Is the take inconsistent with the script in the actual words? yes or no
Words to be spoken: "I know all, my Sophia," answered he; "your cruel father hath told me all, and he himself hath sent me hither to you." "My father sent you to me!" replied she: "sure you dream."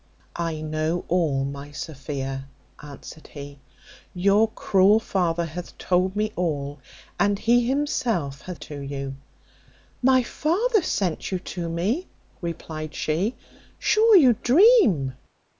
yes